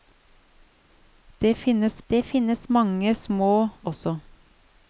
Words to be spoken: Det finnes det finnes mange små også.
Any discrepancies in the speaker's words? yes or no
no